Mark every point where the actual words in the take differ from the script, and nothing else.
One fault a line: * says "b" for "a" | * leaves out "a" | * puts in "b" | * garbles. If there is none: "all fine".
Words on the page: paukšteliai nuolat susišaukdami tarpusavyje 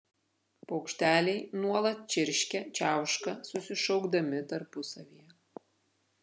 * puts in "čirškia čiauška"